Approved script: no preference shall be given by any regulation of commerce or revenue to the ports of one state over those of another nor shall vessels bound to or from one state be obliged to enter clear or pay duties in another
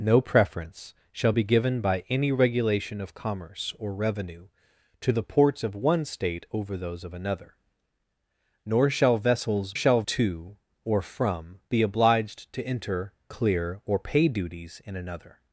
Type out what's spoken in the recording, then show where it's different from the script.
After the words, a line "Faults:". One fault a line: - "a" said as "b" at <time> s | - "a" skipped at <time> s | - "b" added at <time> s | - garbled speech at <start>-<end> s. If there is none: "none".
no preference shall be given by any regulation of commerce or revenue to the ports of one state over those of another nor shall vessels shall to or from be obliged to enter clear or pay duties in another
Faults:
- "bound" said as "shall" at 9.7 s
- "one state" skipped at 11.6 s